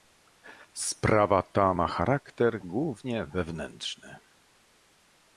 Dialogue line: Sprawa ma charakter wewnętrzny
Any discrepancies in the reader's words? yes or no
yes